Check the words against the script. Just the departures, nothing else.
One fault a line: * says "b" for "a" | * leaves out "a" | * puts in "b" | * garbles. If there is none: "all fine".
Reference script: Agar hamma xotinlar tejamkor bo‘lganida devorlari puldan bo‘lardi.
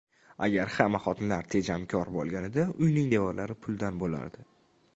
* puts in "uyning"